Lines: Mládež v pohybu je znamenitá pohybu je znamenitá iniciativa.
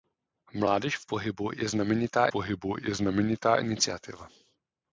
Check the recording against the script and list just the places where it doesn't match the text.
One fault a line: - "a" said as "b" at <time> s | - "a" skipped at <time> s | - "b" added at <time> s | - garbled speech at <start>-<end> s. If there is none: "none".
none